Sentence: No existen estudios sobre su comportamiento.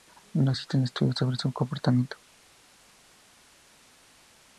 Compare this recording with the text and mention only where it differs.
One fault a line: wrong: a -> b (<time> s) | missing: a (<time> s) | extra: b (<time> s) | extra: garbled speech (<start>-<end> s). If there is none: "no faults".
no faults